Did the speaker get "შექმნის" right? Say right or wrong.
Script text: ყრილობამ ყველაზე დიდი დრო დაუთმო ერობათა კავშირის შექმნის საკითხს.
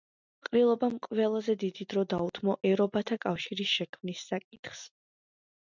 right